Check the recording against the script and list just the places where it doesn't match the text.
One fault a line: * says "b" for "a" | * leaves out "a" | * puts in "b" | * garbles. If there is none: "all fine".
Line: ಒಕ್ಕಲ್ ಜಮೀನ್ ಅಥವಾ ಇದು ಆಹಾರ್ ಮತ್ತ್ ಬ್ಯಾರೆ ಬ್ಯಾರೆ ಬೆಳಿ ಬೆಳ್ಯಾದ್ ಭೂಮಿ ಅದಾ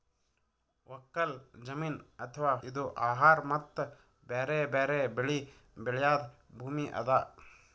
all fine